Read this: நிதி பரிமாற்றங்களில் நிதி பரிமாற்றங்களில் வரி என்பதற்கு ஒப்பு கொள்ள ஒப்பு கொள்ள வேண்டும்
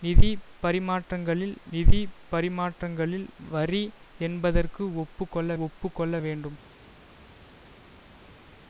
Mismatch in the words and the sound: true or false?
false